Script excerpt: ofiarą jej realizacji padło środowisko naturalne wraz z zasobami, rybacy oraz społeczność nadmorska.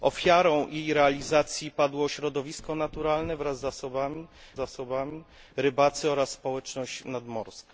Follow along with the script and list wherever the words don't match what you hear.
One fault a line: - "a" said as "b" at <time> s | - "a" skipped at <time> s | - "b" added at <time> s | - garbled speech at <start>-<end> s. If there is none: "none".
- "zasobami" added at 4.6 s